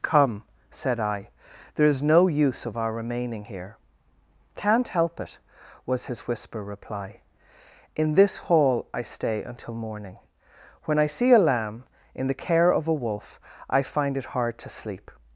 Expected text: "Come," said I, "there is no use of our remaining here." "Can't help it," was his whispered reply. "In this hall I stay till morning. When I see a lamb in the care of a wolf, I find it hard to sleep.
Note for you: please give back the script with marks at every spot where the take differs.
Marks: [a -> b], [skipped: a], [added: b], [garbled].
"Come," said I, "there is no use of our remaining here." "Can't help it," was his [whispered -> whisper] reply. "In this hall I stay [till -> until] morning. When I see a lamb in the care of a wolf, I find it hard to sleep.